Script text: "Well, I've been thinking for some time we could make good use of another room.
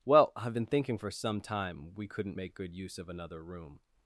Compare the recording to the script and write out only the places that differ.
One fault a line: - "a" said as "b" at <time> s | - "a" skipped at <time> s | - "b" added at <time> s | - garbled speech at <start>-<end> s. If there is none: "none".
- "could" said as "couldn't" at 2.1 s